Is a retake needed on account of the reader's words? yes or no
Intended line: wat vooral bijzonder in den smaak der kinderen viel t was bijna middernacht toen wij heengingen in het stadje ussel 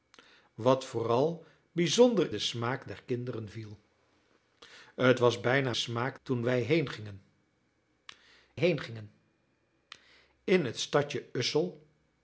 yes